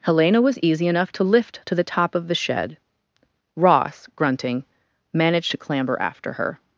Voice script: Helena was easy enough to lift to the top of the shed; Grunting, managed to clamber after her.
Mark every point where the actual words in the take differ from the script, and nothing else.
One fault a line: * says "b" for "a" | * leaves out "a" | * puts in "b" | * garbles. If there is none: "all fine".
* puts in "Ross"